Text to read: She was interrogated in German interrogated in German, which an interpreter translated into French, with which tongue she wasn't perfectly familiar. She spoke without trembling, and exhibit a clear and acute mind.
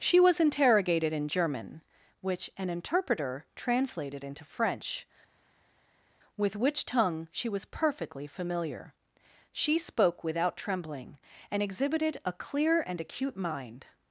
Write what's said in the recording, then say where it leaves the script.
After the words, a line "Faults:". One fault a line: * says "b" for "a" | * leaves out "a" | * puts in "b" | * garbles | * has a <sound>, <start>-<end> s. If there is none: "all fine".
She was interrogated in German, which an interpreter translated into French, with which tongue she was perfectly familiar. She spoke without trembling, and exhibited a clear and acute mind.
Faults:
* leaves out "interrogated in German"
* says "was" for "wasn't"
* says "exhibited" for "exhibit"